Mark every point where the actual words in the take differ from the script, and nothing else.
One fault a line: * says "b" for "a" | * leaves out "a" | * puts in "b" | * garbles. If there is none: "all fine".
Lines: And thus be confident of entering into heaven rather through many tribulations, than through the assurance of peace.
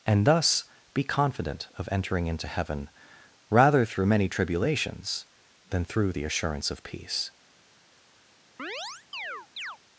all fine